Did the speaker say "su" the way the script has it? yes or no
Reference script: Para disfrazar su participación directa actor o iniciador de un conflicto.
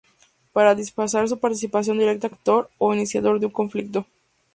yes